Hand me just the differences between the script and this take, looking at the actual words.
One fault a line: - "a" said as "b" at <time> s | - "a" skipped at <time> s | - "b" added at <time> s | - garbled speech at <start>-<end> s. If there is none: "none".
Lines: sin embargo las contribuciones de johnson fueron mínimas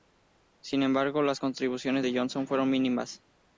none